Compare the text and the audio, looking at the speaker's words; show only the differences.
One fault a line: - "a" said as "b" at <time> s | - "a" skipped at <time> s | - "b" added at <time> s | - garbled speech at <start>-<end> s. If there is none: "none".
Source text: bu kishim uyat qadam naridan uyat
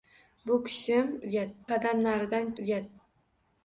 none